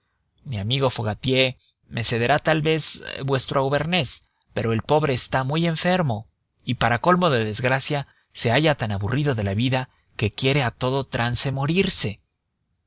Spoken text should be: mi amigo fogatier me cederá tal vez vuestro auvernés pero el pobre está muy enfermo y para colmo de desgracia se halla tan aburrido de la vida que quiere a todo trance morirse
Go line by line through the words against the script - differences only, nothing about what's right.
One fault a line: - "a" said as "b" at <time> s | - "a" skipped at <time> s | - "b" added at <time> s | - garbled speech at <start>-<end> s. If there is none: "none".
none